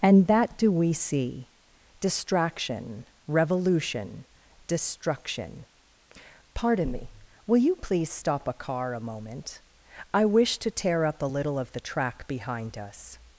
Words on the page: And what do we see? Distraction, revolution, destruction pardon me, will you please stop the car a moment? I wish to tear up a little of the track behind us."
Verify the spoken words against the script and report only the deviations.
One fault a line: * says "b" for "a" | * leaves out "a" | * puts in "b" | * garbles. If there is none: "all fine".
* says "that" for "what"
* says "a" for "the"